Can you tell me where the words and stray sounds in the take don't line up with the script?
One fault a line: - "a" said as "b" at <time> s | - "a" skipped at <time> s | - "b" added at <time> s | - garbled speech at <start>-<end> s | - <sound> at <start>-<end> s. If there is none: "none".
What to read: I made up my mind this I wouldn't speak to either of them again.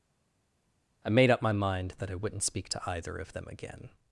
- "this" said as "that" at 2.0 s